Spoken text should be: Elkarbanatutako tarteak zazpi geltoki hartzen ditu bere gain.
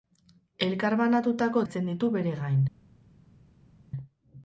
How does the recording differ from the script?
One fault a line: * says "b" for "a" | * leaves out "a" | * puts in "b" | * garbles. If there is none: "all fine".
* leaves out "tarteak zazpi geltoki"